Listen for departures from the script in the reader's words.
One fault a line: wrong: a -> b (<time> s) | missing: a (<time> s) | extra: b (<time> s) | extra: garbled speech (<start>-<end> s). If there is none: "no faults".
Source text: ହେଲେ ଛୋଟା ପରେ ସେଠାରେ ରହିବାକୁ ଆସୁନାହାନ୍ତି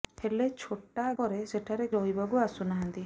no faults